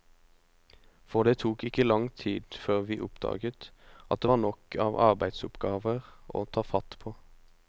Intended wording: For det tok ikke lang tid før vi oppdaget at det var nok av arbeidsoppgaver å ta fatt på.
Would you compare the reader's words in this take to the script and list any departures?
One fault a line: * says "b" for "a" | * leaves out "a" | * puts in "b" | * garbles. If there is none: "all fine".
all fine